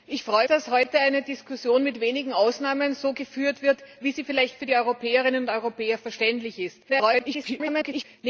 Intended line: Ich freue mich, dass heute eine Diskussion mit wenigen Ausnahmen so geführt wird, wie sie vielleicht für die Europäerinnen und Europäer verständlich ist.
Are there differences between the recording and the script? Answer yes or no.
yes